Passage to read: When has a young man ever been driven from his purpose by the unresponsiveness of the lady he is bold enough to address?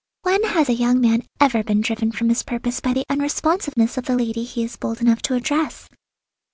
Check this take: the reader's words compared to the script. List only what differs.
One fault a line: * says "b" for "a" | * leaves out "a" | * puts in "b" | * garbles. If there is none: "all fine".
all fine